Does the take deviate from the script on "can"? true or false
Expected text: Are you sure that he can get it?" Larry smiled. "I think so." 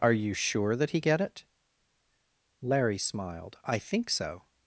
true